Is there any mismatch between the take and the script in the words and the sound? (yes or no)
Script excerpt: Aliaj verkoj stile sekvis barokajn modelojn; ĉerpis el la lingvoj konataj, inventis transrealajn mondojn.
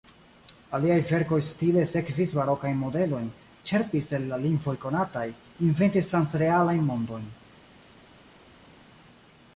no